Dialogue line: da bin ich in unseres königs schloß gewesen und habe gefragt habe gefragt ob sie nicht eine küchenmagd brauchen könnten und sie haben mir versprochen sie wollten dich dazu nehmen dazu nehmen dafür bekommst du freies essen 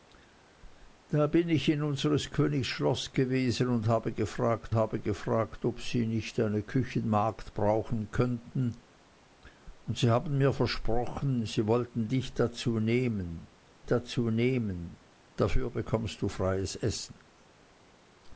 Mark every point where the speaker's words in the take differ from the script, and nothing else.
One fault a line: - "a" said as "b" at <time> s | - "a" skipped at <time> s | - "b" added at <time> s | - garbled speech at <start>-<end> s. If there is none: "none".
none